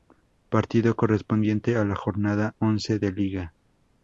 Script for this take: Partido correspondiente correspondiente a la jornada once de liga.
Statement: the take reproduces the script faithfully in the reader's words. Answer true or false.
false